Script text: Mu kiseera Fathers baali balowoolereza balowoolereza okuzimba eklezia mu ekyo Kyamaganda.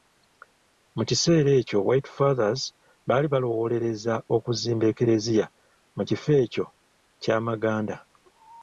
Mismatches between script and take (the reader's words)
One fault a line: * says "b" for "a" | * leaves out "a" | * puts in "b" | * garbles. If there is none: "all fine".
* puts in "ekyo White"
* leaves out "balowoolereza"
* puts in "kifo"